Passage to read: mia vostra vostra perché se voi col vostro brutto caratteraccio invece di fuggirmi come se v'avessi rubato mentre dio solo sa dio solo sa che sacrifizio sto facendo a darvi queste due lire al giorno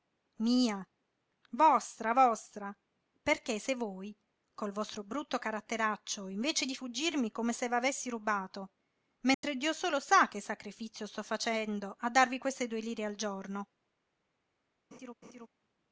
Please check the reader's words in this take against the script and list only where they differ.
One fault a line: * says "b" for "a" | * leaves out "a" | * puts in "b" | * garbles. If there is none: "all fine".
* leaves out "dio solo sa"